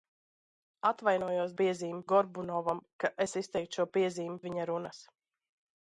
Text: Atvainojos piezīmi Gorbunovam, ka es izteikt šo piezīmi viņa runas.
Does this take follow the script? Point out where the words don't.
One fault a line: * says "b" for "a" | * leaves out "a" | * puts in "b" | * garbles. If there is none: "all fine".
all fine